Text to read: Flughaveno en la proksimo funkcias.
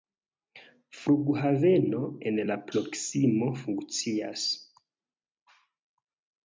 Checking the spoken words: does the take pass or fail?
pass